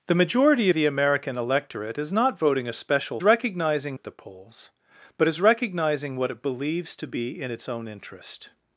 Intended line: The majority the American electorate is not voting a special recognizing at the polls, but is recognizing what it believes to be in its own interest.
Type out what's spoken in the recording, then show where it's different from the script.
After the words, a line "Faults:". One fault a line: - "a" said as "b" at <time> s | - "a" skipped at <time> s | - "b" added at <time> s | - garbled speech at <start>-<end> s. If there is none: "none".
The majority the American electorate is not voting a special recognizing at the polls, but is recognizing what it believes to be in its own interest.
Faults:
none